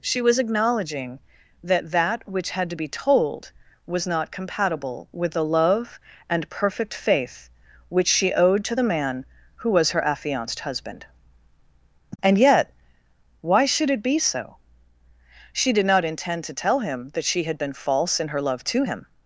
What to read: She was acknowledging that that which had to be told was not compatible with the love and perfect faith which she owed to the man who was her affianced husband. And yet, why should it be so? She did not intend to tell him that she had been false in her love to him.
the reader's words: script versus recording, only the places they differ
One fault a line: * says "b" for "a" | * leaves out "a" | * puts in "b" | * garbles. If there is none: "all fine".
all fine